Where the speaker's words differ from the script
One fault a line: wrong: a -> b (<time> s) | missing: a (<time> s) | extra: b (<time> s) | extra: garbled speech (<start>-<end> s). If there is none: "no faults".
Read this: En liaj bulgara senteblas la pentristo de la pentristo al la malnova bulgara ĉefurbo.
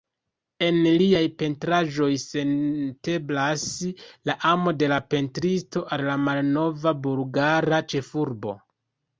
wrong: bulgara -> pentraĵoj (1.4 s)
wrong: pentristo -> amo (4.5 s)